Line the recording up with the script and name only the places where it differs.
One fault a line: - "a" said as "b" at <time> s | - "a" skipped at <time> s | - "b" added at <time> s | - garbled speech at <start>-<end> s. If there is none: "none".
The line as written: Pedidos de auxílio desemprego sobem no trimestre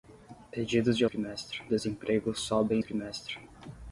- "auxílio" said as "trimestre" at 1.0 s
- "no" skipped at 2.8 s